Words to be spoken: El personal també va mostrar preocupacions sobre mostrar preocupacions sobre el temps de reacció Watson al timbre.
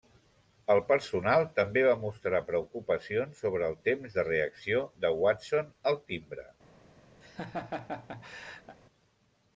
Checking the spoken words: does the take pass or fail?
fail